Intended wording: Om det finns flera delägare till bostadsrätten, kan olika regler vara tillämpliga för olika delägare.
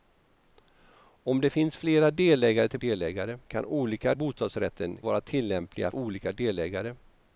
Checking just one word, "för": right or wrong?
wrong